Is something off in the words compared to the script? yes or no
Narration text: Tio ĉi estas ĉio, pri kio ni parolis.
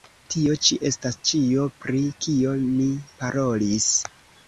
no